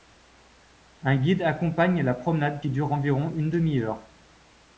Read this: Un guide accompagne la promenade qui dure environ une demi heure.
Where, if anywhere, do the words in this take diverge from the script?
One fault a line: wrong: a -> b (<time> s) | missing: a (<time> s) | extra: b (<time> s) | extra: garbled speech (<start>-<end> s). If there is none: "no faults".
no faults